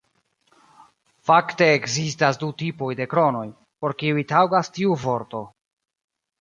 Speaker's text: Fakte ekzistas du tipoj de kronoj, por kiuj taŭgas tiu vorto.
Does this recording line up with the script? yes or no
yes